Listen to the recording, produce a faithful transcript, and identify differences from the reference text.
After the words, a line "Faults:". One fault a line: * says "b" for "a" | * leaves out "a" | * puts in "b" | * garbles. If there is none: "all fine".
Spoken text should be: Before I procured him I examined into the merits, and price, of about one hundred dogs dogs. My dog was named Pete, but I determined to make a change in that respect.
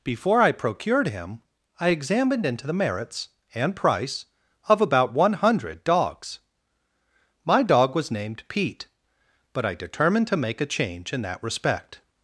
Before I procured him I examined into the merits, and price, of about one hundred dogs. My dog was named Pete, but I determined to make a change in that respect.
Faults:
* leaves out "dogs"